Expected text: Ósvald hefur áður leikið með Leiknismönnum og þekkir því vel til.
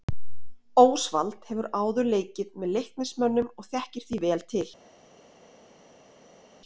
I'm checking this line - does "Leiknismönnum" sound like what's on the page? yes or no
yes